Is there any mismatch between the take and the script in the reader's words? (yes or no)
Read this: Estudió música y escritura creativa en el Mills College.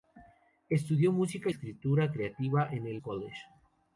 yes